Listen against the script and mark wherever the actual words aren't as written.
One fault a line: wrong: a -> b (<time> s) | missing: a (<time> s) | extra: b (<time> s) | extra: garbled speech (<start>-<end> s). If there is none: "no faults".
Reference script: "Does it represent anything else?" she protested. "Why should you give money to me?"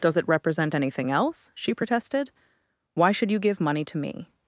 no faults